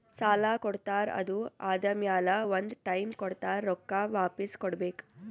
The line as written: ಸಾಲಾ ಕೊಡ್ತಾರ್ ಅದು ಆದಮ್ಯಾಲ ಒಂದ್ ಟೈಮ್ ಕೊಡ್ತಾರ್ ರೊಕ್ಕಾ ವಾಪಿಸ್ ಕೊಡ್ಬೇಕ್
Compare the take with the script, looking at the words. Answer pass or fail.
pass